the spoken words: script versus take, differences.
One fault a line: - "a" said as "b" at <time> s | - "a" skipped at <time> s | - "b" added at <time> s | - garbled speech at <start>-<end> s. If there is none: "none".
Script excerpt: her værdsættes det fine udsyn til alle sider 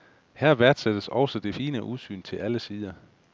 - "også" added at 1.1 s